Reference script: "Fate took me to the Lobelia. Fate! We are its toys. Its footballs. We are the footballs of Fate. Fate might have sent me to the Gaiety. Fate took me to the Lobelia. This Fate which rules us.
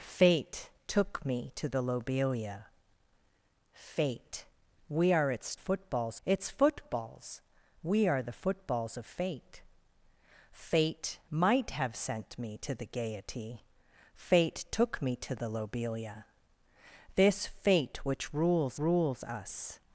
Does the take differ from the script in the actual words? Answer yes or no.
yes